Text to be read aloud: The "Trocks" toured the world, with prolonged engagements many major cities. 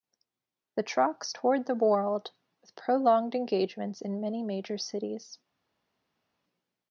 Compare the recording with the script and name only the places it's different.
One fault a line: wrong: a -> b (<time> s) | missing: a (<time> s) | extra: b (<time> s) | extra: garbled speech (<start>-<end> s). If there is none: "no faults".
extra: in (4.0 s)